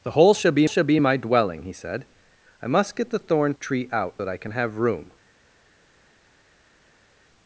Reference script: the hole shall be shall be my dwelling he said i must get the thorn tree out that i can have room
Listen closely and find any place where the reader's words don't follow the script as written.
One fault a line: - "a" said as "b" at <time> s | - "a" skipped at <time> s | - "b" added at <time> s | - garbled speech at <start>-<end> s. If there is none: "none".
none